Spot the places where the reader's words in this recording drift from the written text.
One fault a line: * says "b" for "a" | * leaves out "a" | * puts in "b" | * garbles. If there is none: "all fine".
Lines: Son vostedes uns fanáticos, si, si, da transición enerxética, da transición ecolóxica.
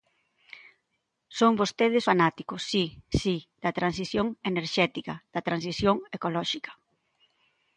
* leaves out "uns"